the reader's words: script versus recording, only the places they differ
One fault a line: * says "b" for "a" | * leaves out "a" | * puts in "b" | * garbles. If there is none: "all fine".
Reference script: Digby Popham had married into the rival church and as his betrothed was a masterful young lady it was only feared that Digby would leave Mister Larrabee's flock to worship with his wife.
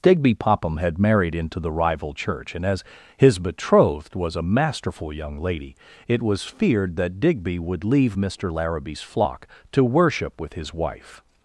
* leaves out "only"